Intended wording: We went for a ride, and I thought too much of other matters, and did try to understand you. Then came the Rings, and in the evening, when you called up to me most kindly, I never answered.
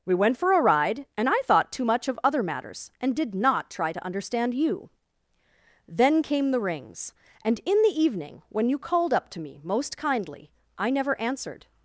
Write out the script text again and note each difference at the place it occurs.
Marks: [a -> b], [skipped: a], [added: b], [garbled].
We went for a ride, and I thought too much of other matters, and did [added: not] try to understand you. Then came the Rings, and in the evening, when you called up to me most kindly, I never answered.